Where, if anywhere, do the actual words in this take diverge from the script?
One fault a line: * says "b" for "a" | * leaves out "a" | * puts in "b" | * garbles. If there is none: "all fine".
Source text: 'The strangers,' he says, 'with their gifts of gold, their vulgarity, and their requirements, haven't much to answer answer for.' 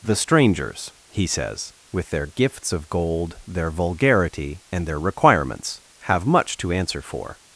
* says "have" for "haven't"
* leaves out "answer"